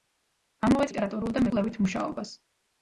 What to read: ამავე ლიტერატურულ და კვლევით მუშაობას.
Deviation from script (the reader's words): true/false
false